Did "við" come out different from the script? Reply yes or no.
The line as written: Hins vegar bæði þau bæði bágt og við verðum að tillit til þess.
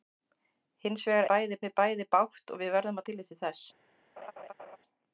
no